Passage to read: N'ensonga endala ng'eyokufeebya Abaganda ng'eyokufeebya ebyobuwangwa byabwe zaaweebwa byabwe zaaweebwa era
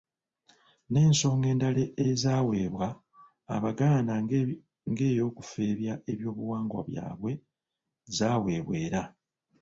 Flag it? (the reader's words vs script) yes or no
yes